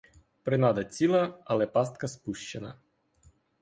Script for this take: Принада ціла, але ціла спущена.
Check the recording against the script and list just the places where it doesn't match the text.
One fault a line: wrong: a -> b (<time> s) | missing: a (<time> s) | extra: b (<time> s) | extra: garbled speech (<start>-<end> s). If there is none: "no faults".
wrong: ціла -> пастка (1.7 s)